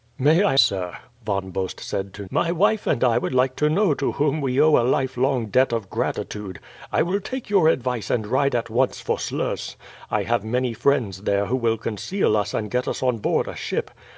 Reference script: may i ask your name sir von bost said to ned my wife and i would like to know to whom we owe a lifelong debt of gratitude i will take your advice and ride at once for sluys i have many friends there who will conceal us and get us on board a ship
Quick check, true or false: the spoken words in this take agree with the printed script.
false